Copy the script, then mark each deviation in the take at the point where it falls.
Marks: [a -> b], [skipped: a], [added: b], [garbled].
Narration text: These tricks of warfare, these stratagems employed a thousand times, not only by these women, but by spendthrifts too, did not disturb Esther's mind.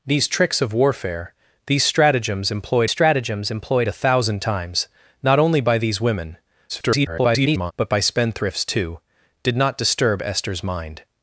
These tricks of warfare, these stratagems employed [added: stratagems employed] a thousand times, not only by these women, [garbled] but by spendthrifts too, did not disturb Esther's mind.